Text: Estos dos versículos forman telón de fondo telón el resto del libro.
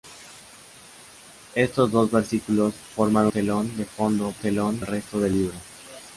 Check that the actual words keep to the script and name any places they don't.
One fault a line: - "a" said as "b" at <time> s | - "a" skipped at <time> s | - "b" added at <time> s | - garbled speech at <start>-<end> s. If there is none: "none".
none